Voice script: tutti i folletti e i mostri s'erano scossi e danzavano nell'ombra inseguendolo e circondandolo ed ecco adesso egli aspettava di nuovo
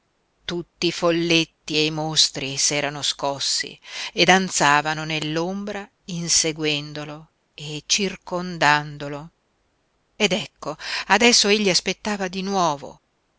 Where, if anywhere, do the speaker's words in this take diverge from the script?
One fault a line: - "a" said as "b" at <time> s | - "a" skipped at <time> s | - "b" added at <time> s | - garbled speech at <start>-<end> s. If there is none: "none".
none